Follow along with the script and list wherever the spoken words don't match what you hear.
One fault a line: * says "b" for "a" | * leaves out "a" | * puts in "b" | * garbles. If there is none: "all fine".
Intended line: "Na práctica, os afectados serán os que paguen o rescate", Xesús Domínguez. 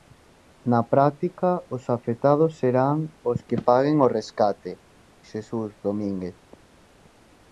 all fine